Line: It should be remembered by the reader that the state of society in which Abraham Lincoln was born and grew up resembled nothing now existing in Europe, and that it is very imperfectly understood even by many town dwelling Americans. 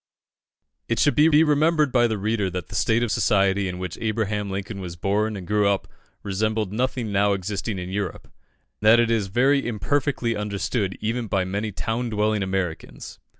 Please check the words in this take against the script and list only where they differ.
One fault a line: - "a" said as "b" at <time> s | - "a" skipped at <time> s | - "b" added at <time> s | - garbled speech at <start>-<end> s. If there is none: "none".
- "be" added at 1.3 s
- "and" skipped at 8.3 s